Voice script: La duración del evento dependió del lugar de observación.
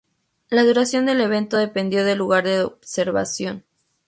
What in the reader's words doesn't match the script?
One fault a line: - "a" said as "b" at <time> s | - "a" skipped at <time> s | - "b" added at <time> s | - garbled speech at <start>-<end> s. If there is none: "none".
none